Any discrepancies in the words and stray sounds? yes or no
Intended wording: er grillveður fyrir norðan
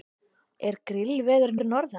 no